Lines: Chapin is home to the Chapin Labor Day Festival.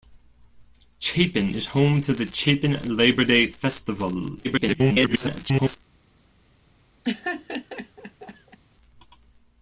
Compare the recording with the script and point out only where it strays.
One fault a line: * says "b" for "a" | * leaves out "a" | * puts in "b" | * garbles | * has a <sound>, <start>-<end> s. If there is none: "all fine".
* garbles
* has a laugh, 7.0-8.6 s